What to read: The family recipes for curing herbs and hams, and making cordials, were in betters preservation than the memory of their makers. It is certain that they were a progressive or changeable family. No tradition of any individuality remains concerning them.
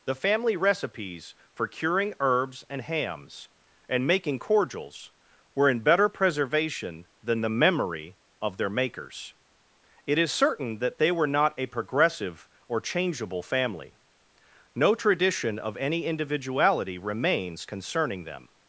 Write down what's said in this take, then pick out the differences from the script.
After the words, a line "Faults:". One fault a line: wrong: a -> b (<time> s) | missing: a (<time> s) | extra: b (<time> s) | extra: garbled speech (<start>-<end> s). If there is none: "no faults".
The family recipes for curing herbs and hams, and making cordials, were in better preservation than the memory of their makers. It is certain that they were not a progressive or changeable family. No tradition of any individuality remains concerning them.
Faults:
wrong: betters -> better (5.8 s)
extra: not (11.3 s)